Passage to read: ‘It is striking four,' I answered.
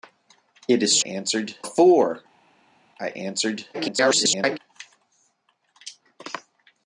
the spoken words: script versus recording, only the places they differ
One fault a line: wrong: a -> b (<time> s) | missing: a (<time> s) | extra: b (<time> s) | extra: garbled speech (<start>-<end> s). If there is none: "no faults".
wrong: striking -> answered (1.0 s)
extra: garbled speech (3.7-4.6 s)